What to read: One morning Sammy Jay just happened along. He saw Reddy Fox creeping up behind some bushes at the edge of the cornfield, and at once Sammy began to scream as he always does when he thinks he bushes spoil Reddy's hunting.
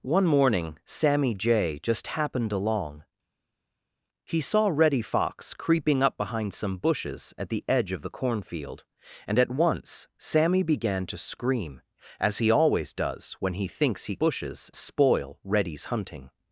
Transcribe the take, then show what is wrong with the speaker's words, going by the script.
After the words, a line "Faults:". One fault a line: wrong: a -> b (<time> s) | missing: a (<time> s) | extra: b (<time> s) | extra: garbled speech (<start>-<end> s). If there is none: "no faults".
One morning Sammy Jay just happened along. He saw Reddy Fox creeping up behind some bushes at the edge of the cornfield, and at once Sammy began to scream as he always does when he thinks he bushes spoil Reddy's hunting.
Faults:
no faults